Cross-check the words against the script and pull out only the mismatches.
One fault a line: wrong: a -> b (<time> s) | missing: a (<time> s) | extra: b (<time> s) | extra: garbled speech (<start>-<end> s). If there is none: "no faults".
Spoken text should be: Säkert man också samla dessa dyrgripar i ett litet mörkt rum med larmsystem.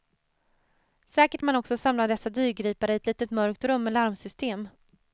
no faults